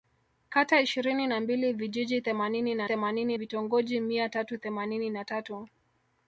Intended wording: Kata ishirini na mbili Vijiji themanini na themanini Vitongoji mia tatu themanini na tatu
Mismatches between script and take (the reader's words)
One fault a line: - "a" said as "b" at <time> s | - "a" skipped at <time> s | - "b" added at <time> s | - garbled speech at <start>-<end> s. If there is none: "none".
none